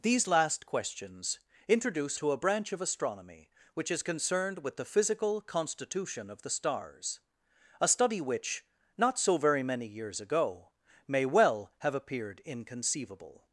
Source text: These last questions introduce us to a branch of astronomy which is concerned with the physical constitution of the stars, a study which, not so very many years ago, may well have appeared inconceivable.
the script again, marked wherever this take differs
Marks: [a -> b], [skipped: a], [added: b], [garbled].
These last questions introduce [skipped: us] to a branch of astronomy which is concerned with the physical constitution of the stars, a study which, not so very many years ago, may well have appeared inconceivable.